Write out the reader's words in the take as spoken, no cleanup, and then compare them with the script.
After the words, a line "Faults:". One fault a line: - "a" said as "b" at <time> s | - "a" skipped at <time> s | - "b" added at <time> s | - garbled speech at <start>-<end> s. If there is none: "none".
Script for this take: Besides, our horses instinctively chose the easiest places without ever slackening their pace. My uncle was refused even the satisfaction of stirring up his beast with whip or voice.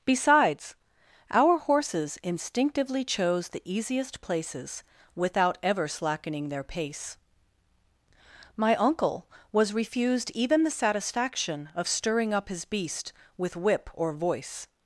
Besides, our horses instinctively chose the easiest places without ever slackening their pace. My uncle was refused even the satisfaction of stirring up his beast with whip or voice.
Faults:
none